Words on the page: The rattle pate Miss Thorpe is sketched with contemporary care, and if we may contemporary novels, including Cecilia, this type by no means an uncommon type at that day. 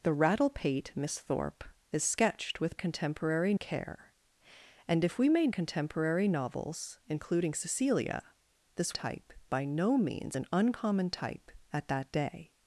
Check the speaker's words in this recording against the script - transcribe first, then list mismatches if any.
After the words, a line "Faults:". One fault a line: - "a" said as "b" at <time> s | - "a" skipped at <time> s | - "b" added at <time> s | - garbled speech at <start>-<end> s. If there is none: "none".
The rattle pate Miss Thorpe is sketched with contemporary care, and if we may contemporary novels, including Cecilia, this type by no means an uncommon type at that day.
Faults:
none